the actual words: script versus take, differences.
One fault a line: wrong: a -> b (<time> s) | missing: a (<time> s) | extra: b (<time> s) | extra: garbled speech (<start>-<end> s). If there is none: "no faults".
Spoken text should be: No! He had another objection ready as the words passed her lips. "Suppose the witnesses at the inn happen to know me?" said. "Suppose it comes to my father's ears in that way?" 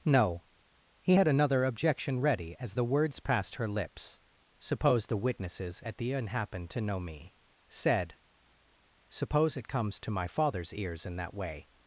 no faults